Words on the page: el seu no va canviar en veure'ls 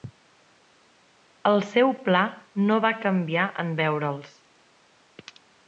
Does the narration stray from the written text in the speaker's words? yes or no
yes